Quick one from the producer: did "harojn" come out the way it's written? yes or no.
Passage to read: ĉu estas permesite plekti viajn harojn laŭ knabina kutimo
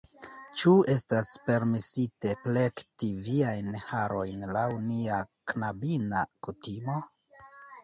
yes